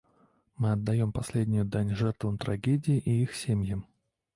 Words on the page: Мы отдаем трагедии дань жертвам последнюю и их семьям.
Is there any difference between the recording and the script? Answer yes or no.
yes